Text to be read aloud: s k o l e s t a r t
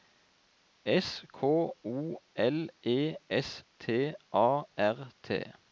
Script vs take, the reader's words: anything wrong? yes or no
no